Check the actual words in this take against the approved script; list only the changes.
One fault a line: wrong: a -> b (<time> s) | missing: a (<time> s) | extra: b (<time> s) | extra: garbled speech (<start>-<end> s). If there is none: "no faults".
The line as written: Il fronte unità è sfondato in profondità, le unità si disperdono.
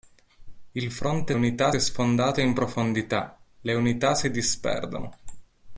no faults